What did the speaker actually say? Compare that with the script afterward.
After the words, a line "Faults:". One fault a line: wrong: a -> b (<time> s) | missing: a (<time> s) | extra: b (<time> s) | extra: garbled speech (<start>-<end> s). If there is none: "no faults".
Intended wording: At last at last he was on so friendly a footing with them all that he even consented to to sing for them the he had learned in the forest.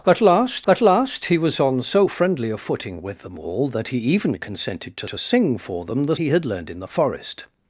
At last at last he was on so friendly a footing with them all that he even consented to to sing for them the he had learned in the forest.
Faults:
no faults